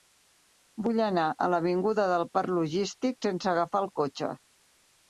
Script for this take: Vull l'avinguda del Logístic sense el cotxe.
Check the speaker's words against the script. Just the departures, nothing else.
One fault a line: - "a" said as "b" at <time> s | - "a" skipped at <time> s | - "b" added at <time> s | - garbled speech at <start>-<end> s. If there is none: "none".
- "anar a" added at 1.1 s
- "Parc" added at 2.4 s
- "agafar" added at 3.6 s